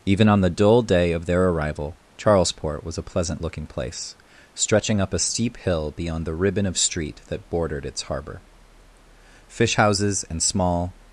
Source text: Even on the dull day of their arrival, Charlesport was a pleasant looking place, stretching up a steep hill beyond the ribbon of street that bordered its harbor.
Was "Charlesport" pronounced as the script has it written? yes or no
yes